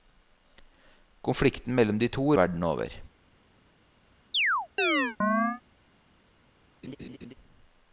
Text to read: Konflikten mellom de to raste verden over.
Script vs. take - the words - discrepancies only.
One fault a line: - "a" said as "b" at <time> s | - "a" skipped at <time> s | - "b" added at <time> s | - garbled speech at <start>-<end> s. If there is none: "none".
- "raste" skipped at 2.4 s